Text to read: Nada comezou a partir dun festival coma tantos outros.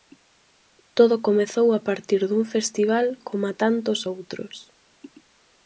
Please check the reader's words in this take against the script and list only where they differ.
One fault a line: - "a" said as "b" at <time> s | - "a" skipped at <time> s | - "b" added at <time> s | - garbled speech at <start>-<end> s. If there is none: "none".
- "Nada" said as "Todo" at 1.0 s